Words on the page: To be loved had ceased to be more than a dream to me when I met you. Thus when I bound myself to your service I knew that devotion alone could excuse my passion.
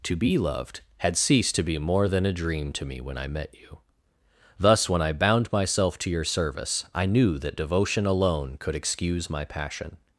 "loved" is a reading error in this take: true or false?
false